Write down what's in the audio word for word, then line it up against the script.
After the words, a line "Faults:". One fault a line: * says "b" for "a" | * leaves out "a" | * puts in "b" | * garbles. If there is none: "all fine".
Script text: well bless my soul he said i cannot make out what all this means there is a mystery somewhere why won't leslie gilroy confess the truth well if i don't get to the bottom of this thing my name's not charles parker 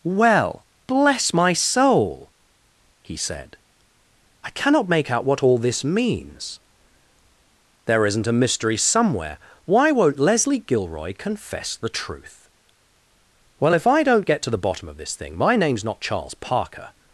well bless my soul he said i cannot make out what all this means there isn't a mystery somewhere why won't leslie gilroy confess the truth well if i don't get to the bottom of this thing my name's not charles parker
Faults:
* says "isn't" for "is"